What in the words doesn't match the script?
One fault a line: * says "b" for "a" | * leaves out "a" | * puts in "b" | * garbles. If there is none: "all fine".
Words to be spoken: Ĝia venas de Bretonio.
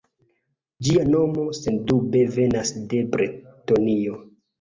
* puts in "nomo sendube"